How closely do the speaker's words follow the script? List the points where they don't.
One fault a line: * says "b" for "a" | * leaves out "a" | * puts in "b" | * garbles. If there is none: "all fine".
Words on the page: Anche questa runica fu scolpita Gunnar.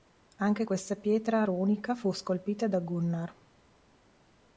* puts in "pietra"
* puts in "da"